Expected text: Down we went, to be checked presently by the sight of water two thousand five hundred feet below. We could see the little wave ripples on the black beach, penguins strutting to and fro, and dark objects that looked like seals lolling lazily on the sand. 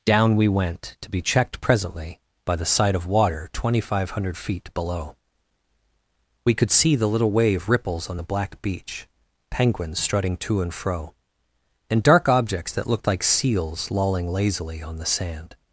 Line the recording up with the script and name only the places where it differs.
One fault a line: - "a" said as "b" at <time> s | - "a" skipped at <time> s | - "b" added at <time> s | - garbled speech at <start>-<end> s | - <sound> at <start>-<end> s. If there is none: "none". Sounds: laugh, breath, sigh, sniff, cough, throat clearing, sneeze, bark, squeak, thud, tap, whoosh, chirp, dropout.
none